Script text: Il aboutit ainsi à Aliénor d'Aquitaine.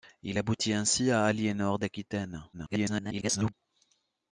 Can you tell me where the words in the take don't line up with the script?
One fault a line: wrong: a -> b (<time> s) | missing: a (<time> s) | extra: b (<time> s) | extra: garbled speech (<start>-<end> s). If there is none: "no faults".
extra: garbled speech (2.5-3.5 s)